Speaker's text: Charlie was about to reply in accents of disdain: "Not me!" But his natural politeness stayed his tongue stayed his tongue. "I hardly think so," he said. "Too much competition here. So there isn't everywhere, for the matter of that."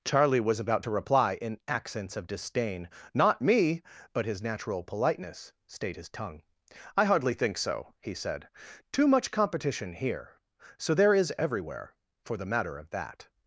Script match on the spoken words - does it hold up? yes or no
no